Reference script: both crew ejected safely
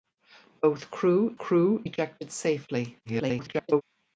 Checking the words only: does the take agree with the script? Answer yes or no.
no